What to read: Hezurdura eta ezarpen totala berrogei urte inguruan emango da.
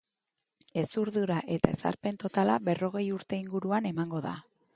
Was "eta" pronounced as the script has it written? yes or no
yes